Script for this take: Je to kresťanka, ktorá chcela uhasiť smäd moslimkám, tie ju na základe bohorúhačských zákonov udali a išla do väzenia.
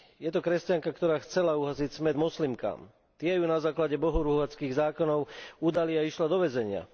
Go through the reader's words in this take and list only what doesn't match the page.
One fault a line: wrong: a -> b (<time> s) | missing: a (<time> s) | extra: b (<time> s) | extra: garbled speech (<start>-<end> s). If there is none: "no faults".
no faults